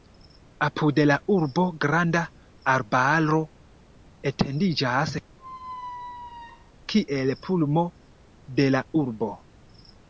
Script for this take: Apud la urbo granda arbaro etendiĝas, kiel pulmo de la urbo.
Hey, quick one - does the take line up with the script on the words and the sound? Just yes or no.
no